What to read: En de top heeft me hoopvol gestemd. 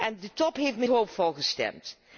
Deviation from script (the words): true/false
false